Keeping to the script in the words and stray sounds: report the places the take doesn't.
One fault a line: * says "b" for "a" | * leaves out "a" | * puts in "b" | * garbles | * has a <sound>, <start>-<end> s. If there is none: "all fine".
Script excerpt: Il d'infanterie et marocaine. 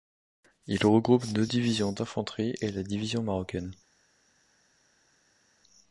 * puts in "regroupe deux divisions"
* puts in "la division"